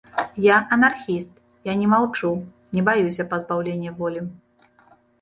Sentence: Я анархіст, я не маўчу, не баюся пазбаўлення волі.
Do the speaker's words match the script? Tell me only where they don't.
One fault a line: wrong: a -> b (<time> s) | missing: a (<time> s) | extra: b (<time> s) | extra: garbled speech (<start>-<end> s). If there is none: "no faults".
no faults